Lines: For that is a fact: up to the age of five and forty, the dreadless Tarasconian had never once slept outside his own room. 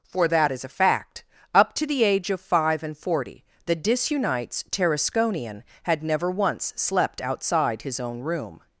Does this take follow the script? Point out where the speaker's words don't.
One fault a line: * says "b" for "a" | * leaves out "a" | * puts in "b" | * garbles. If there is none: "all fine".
* says "disunites" for "dreadless"